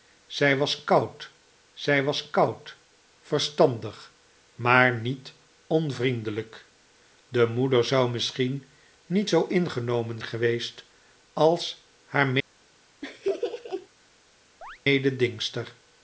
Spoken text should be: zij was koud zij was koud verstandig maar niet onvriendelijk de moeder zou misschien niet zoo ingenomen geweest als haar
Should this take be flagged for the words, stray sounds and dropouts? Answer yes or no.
yes